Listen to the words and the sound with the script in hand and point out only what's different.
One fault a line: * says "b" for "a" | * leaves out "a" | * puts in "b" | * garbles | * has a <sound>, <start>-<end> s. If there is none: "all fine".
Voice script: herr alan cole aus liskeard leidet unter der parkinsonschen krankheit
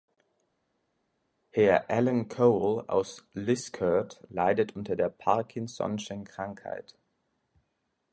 all fine